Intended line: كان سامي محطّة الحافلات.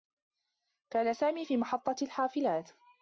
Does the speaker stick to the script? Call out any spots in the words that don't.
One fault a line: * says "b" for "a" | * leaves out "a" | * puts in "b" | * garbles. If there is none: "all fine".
* puts in "في"